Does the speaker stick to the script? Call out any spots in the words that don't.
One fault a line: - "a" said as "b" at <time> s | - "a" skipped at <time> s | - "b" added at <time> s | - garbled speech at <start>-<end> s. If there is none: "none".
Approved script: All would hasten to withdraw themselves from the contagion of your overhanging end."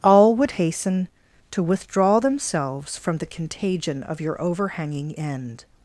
none